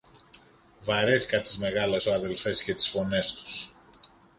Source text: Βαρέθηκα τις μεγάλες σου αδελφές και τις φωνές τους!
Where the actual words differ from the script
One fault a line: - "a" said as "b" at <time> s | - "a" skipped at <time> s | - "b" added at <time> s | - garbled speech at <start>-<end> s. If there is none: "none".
none